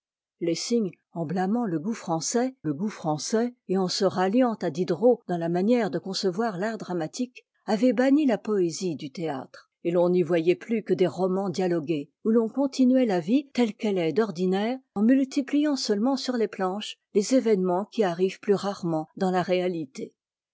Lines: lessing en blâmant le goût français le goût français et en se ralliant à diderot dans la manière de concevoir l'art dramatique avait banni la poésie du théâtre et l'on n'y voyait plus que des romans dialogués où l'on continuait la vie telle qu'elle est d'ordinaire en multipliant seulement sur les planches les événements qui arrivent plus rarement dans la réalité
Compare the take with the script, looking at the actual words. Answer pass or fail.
pass